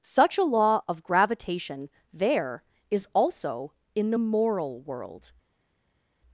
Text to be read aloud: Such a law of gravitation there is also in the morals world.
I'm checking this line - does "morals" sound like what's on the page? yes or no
no